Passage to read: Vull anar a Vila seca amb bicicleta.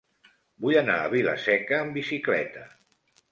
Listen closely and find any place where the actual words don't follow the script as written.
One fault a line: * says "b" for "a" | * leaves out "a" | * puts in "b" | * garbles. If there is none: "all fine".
all fine